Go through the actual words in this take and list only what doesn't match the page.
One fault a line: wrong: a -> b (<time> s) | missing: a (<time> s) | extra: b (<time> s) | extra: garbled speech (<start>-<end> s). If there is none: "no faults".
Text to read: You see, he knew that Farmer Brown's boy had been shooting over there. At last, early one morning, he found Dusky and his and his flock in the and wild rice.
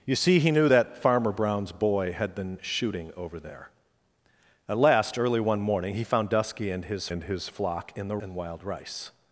no faults